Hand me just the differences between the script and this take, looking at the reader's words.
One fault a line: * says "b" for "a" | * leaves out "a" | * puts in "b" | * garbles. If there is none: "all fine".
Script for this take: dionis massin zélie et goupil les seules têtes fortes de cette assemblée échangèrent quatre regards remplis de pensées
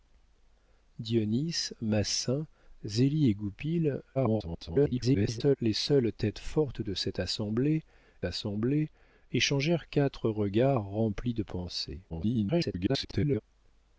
* garbles
* puts in "assemblée"
* garbles